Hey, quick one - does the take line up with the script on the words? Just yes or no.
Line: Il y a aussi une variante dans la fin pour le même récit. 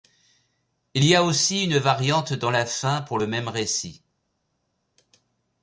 yes